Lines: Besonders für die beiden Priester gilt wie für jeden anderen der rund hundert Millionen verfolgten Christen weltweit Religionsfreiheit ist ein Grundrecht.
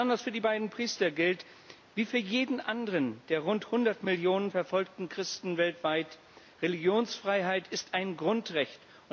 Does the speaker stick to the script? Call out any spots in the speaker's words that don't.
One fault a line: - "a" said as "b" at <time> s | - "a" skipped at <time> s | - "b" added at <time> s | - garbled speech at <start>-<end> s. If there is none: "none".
none